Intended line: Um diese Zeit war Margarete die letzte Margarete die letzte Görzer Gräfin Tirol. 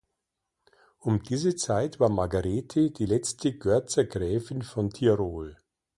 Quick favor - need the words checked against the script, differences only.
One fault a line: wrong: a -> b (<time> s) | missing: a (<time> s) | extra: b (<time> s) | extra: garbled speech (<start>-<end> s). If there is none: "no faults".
missing: Margarete die letzte (3.6 s)
extra: von (4.6 s)